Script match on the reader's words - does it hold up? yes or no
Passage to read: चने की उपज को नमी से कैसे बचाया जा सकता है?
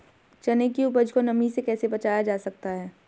yes